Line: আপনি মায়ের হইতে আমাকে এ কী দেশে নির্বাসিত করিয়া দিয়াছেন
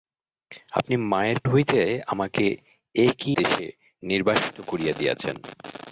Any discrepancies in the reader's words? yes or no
no